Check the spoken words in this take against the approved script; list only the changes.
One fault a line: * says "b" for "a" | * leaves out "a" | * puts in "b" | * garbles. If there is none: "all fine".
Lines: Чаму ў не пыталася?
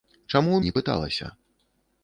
all fine